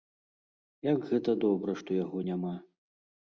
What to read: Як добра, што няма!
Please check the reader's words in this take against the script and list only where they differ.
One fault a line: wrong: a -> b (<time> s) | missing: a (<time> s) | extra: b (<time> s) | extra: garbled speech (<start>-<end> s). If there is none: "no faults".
extra: гэта (1.1 s)
extra: яго (2.0 s)